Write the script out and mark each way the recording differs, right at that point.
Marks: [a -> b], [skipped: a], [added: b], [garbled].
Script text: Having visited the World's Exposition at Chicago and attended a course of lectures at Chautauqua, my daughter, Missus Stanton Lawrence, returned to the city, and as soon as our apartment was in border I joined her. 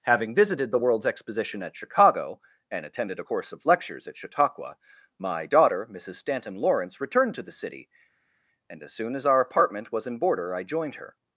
Having visited the World's Exposition at Chicago and attended a course of lectures at Chautauqua, my daughter, Missus Stanton Lawrence, returned to the city, and as soon as our apartment was in border I joined her.